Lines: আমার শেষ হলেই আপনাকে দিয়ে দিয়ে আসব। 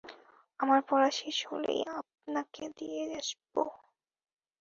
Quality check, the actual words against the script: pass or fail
fail